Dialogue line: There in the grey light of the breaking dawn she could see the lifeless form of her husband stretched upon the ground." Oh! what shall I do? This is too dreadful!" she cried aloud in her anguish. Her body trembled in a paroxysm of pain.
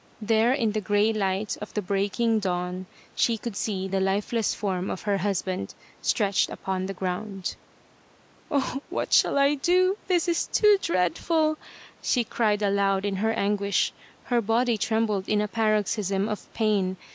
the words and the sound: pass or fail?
pass